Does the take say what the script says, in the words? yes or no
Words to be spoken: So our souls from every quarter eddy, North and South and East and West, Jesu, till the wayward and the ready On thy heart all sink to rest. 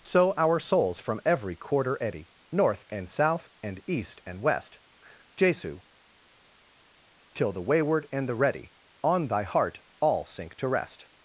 yes